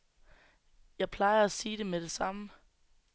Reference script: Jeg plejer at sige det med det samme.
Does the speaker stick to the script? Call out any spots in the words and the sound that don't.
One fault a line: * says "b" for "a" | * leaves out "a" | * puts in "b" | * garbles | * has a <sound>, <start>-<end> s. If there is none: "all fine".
all fine